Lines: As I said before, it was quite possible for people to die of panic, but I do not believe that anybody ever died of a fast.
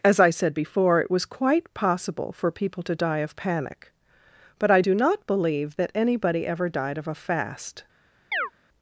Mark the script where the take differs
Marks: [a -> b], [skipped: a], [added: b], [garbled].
As I said before, it was quite possible for people to die of panic, but I do not believe that anybody ever died of a fast.